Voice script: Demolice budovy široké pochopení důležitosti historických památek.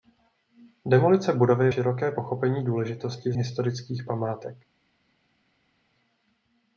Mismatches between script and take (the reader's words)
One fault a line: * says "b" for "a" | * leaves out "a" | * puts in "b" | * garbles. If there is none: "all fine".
all fine